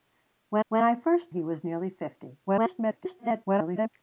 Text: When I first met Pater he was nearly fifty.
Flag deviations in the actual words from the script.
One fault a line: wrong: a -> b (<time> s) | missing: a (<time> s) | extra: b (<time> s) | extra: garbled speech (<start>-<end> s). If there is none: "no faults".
extra: when (0.7 s)
missing: met Pater (1.3 s)
extra: garbled speech (2.5-3.9 s)